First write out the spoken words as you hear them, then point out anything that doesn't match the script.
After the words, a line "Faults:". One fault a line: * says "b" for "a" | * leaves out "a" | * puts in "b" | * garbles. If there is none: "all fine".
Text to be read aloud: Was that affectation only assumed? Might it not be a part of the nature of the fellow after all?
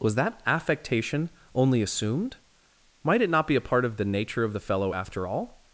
Was that affectation only assumed? Might it not be a part of the nature of the fellow after all?
Faults:
all fine